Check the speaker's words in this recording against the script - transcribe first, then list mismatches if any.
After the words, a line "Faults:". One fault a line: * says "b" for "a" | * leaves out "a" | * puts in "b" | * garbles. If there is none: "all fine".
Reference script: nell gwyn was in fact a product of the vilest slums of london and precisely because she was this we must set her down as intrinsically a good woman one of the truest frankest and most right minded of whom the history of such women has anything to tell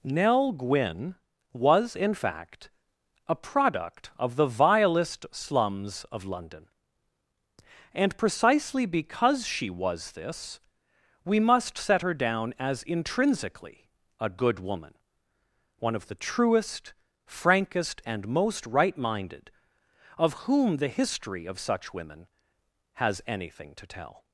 nell gwyn was in fact a product of the vilest slums of london and precisely because she was this we must set her down as intrinsically a good woman one of the truest frankest and most right minded of whom the history of such women has anything to tell
Faults:
all fine